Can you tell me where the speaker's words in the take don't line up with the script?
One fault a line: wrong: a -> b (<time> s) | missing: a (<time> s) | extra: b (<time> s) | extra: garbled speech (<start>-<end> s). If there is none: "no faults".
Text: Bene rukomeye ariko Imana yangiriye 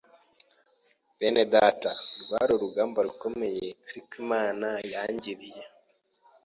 extra: data rwari urugamba (1.5 s)